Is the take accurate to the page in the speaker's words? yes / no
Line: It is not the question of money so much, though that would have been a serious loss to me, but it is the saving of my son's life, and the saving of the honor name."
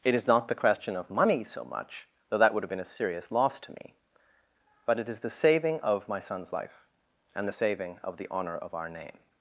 no